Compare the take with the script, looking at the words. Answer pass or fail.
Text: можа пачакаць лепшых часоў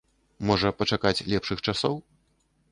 pass